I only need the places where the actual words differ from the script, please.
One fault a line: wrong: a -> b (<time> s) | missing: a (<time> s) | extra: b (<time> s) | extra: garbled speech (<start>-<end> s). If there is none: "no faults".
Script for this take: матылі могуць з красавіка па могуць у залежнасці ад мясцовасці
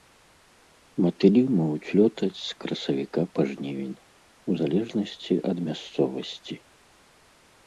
extra: лётаць (2.0 s)
wrong: могуць -> жнівень (3.5 s)